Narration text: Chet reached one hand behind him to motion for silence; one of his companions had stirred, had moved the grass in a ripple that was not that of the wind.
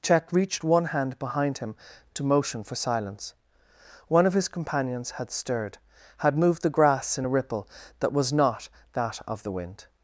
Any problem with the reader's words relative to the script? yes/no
no